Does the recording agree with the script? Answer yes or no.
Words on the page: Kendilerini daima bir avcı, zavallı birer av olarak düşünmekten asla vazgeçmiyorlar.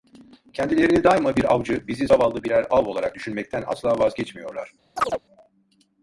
no